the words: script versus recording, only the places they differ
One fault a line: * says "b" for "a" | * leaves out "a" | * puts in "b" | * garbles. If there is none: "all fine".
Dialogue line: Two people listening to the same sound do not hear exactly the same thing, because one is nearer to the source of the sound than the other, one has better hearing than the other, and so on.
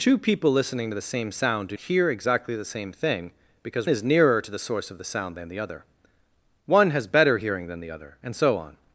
* leaves out "not"
* leaves out "one"